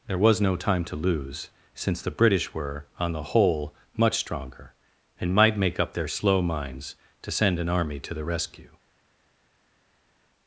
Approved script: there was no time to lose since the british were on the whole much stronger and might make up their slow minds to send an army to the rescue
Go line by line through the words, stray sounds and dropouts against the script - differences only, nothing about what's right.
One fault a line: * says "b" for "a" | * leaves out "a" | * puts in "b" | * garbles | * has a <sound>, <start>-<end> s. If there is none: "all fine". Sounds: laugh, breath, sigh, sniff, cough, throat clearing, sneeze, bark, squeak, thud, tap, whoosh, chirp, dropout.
all fine